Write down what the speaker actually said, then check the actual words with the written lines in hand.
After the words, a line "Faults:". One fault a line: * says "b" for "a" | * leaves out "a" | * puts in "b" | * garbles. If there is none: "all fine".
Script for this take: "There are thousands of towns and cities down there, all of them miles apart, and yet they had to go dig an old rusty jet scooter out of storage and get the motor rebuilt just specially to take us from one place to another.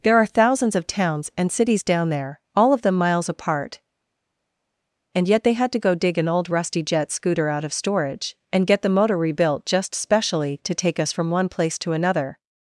"There are thousands of towns and cities down there, all of them miles apart, and yet they had to go dig an old rusty jet scooter out of storage and get the motor rebuilt just specially to take us from one place to another.
Faults:
all fine